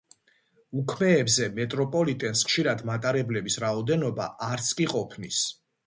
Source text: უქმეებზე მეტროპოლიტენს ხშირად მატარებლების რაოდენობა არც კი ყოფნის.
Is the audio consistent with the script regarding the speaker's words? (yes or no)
yes